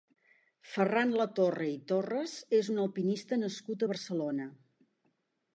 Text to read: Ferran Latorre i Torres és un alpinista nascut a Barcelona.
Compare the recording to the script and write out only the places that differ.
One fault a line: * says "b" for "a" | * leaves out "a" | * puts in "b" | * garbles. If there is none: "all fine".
all fine